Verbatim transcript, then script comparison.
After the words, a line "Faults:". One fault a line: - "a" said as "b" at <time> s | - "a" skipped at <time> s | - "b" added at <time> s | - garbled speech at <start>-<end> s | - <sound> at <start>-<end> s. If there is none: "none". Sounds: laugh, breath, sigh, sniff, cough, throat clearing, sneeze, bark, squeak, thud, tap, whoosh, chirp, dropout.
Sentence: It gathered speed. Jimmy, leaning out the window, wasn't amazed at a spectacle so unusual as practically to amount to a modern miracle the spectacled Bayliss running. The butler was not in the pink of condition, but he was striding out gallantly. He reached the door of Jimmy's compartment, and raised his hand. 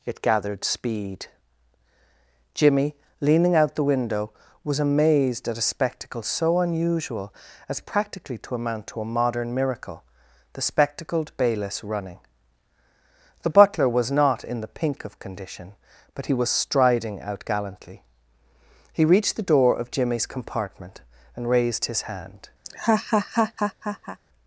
It gathered speed. Jimmy, leaning out the window, was amazed at a spectacle so unusual as practically to amount to a modern miracle the spectacled Bayliss running. The butler was not in the pink of condition, but he was striding out gallantly. He reached the door of Jimmy's compartment, and raised his hand.
Faults:
- "wasn't" said as "was" at 4.6 s
- laugh at 22.6-24.2 s